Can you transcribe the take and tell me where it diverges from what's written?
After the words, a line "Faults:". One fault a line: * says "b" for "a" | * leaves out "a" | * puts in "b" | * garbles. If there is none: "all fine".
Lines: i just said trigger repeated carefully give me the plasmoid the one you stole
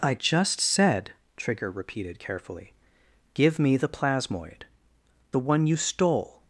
i just said trigger repeated carefully give me the plasmoid the one you stole
Faults:
all fine